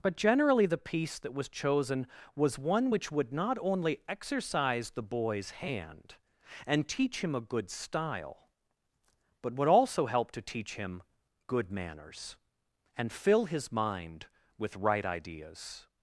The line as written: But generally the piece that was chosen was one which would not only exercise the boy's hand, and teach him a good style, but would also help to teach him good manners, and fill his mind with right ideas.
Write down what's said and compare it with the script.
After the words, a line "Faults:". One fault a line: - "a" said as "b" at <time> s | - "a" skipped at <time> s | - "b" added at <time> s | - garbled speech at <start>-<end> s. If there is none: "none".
But generally the piece that was chosen was one which would not only exercise the boy's hand, and teach him a good style, but would also help to teach him good manners, and fill his mind with right ideas.
Faults:
none